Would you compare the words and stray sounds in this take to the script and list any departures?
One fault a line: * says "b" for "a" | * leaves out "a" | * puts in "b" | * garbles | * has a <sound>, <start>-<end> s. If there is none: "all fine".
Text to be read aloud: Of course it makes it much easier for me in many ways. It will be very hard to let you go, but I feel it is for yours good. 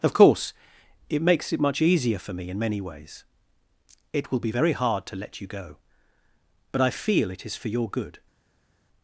* says "your" for "yours"